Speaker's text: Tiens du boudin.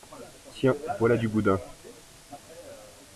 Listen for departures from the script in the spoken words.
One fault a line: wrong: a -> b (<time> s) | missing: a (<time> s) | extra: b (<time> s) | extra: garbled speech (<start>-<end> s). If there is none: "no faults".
extra: voilà (1.0 s)